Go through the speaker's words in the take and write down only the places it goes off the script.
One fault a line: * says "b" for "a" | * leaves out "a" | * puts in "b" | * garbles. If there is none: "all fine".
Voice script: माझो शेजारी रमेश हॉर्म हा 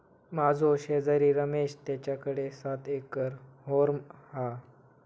* puts in "तेच्याकडे सात एकर"